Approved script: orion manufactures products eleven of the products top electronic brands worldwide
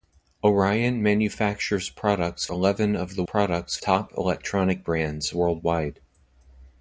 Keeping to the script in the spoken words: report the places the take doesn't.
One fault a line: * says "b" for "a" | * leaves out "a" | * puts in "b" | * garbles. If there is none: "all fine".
all fine